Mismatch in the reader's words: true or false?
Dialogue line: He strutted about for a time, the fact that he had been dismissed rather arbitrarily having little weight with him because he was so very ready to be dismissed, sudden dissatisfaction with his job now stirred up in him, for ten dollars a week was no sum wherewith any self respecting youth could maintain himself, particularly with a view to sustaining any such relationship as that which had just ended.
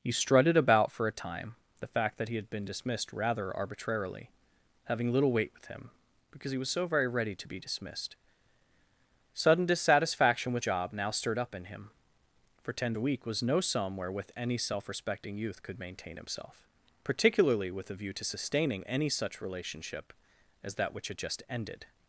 true